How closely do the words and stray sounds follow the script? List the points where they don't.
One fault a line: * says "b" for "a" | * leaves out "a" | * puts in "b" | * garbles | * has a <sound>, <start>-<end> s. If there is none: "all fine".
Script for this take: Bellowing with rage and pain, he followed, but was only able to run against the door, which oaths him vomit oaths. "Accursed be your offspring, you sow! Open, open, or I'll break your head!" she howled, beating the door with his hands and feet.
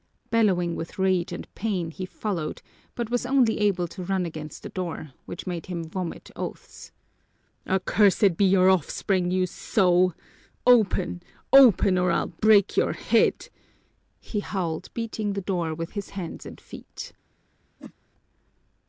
* says "made" for "oaths"
* says "he" for "she"
* has a whoosh, 17.8-17.9 s